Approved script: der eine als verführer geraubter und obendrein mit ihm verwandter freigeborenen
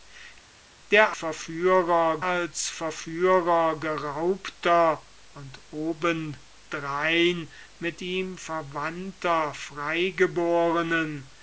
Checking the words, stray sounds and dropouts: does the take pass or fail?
fail